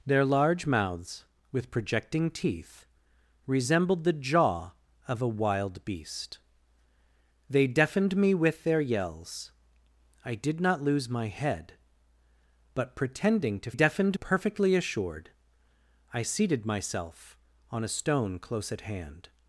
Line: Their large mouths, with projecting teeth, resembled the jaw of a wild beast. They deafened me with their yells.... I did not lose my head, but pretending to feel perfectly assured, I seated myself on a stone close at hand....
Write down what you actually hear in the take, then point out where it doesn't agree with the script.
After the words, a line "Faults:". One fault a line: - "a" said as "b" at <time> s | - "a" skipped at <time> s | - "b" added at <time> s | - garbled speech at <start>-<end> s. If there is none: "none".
Their large mouths, with projecting teeth, resembled the jaw of a wild beast. They deafened me with their yells.... I did not lose my head, but pretending to deafened perfectly assured, I seated myself on a stone close at hand....
Faults:
- "feel" said as "deafened" at 13.7 s